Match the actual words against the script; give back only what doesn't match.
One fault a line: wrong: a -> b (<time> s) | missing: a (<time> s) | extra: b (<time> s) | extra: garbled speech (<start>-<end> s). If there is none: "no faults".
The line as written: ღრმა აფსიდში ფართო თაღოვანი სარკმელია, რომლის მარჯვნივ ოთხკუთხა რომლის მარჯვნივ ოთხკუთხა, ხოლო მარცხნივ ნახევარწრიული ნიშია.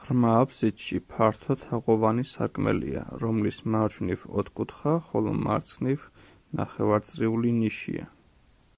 missing: რომლის მარჯვნივ ოთხკუთხა (4.9 s)